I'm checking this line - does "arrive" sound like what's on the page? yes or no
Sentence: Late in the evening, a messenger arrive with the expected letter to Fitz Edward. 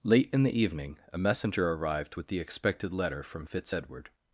no